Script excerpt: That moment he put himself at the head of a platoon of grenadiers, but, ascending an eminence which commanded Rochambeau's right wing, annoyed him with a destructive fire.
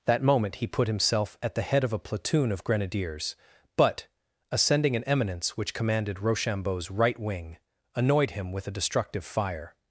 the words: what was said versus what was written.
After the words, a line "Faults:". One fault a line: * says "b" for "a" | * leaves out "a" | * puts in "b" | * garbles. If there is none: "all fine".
That moment he put himself at the head of a platoon of grenadiers, but, ascending an eminence which commanded Rochambeau's right wing, annoyed him with a destructive fire.
Faults:
all fine